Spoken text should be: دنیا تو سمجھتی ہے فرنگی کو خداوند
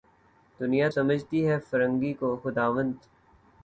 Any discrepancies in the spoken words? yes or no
yes